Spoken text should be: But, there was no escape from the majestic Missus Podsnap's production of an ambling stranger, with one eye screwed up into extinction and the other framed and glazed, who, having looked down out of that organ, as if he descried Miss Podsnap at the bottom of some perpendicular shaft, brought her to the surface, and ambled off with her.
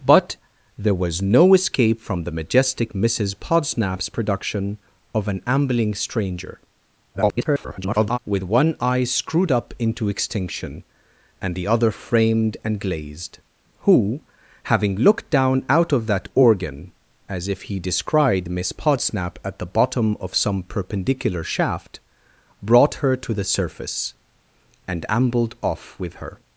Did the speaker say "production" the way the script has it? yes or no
yes